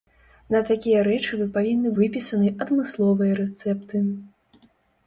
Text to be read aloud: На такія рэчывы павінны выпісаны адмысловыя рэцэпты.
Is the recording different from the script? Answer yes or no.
no